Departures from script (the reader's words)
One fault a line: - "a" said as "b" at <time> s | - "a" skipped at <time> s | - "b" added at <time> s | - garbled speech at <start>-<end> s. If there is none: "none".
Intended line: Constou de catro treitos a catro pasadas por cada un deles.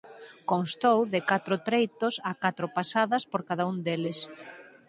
none